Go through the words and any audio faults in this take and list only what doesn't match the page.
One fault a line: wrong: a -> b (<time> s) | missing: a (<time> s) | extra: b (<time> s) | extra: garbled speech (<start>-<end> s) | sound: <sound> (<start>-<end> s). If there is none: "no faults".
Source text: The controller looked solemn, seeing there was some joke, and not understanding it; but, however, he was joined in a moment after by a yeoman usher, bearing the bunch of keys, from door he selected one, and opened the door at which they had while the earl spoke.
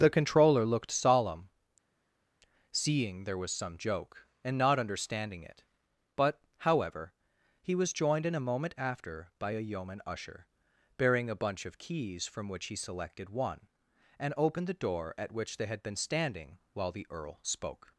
wrong: the -> a (11.3 s)
wrong: door -> which (12.5 s)
extra: been standing (15.8 s)